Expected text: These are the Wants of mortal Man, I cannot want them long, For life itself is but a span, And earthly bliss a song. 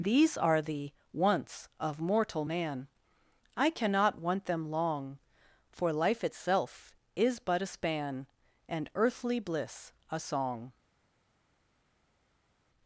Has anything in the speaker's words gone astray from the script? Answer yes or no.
no